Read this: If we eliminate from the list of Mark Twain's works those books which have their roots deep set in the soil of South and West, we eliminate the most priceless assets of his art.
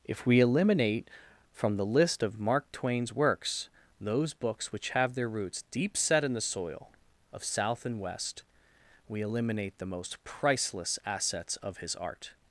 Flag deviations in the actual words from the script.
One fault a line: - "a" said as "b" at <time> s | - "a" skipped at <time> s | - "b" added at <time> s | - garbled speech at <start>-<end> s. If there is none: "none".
none